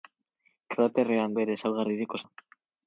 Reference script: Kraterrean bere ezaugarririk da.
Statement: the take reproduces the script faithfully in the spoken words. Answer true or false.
true